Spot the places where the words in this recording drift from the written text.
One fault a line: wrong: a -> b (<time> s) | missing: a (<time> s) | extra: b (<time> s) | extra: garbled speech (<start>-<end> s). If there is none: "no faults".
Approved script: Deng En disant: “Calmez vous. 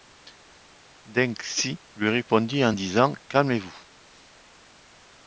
extra: Xi lui répondit (1.4 s)